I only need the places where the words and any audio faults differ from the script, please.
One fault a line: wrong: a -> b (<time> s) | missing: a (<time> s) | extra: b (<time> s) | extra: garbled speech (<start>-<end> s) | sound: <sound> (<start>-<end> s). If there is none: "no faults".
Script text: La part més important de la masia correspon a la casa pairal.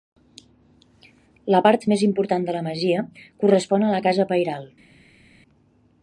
no faults